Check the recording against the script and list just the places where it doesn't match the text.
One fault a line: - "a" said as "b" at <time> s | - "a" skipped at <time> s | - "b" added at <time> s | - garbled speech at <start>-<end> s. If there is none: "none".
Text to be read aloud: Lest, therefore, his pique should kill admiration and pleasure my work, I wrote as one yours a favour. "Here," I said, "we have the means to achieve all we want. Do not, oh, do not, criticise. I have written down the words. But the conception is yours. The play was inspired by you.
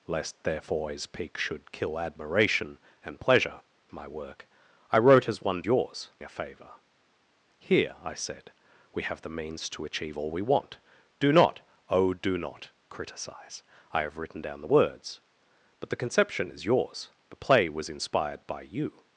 none